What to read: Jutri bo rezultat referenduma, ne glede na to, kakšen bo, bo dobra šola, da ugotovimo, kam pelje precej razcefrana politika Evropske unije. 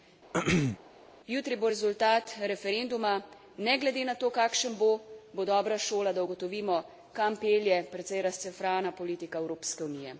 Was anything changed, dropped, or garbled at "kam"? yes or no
no